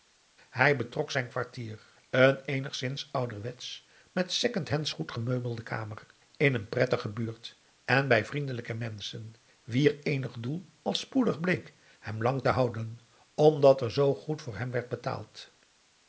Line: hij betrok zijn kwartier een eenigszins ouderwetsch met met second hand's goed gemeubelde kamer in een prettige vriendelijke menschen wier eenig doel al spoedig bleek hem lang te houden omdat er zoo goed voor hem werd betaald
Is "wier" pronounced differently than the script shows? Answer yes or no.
no